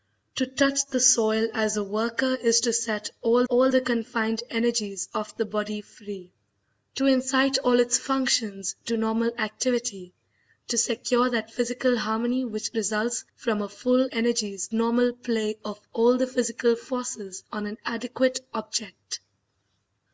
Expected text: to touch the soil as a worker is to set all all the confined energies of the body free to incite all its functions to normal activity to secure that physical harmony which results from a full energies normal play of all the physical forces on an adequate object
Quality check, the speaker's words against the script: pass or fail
pass